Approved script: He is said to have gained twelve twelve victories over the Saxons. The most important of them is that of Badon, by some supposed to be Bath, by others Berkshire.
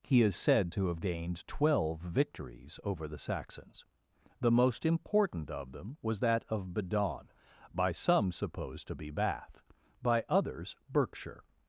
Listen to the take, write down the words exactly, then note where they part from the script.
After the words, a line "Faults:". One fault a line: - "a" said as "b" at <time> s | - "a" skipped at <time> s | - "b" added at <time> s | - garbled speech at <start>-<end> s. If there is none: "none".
He is said to have gained twelve victories over the Saxons. The most important of them was that of Badon, by some supposed to be Bath, by others Berkshire.
Faults:
- "twelve" skipped at 2.0 s
- "is" said as "was" at 6.0 s